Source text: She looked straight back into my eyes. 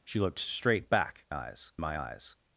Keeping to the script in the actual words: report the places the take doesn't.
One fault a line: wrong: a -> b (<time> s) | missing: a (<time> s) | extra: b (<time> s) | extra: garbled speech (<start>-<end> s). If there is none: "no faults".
wrong: into -> eyes (1.3 s)